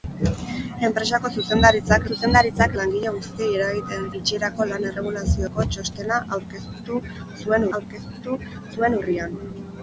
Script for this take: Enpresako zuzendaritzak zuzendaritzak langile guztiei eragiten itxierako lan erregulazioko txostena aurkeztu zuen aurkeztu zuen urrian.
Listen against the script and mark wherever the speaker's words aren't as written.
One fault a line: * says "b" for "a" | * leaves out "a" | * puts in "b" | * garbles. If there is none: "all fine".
all fine